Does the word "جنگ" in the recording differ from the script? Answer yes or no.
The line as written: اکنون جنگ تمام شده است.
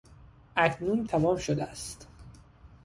yes